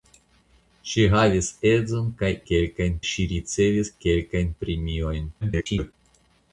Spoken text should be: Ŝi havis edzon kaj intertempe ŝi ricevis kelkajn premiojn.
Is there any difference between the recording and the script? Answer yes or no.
yes